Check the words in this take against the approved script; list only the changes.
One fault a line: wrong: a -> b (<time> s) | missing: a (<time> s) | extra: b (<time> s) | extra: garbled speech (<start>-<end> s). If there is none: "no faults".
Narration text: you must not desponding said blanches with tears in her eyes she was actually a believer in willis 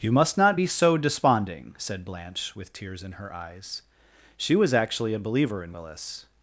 extra: be so (0.5 s)
wrong: blanches -> blanche (2.0 s)